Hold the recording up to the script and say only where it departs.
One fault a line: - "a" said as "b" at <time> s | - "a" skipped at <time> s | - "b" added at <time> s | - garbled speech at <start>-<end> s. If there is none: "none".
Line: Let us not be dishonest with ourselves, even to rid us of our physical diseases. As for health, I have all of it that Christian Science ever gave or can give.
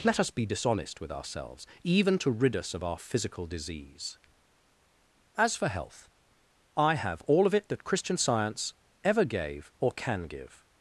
- "not" skipped at 0.3 s
- "diseases" said as "disease" at 3.5 s